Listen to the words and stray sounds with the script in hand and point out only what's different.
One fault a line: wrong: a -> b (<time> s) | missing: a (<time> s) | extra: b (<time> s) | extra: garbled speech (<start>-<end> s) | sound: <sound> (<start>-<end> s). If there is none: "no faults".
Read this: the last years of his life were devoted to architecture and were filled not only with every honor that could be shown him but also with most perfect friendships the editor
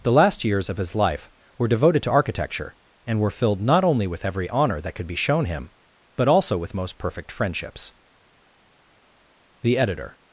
no faults